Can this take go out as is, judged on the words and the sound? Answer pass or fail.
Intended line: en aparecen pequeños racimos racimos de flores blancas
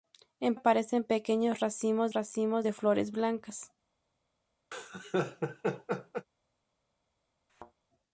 fail